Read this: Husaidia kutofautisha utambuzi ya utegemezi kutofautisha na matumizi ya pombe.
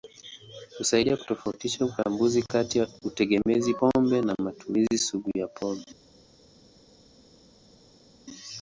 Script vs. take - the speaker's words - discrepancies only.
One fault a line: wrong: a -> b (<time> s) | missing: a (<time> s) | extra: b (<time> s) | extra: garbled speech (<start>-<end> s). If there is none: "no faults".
extra: kati (2.4 s)
wrong: kutofautisha -> pombe (3.7 s)
extra: sugu (5.0 s)